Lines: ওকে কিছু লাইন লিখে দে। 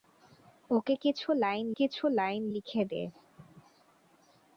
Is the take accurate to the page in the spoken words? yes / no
no